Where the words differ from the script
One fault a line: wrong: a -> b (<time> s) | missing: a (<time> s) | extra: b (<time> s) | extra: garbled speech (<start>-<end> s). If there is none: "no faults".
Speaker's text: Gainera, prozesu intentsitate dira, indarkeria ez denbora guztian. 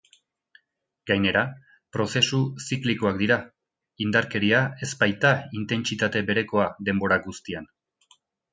wrong: intentsitate -> ziklikoak (2.7 s)
extra: baita intentsitate berekoa (5.0 s)